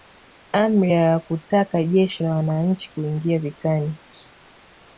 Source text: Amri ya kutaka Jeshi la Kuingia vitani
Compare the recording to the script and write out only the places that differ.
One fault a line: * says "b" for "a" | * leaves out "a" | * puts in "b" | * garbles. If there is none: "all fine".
* puts in "Wananchi"